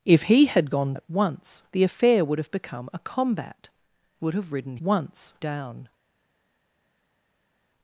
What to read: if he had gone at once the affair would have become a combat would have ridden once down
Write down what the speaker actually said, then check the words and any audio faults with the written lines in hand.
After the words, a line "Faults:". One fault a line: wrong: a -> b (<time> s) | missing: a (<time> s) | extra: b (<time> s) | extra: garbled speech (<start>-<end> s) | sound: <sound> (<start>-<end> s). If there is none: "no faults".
if he had gone at once the affair would have become a combat would have ridden once down
Faults:
no faults